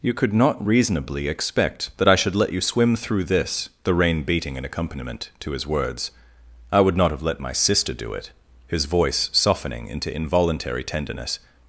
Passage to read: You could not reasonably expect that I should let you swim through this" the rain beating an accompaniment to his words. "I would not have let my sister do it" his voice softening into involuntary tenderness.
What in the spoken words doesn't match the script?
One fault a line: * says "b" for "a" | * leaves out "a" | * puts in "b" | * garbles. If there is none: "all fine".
all fine